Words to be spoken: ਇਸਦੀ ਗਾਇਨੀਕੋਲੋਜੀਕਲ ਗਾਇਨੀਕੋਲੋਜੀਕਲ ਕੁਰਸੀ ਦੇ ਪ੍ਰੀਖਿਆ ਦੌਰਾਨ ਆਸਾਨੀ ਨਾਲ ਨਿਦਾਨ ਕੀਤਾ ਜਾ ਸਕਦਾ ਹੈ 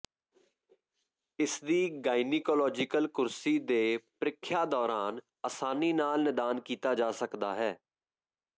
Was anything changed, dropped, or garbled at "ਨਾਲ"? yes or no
no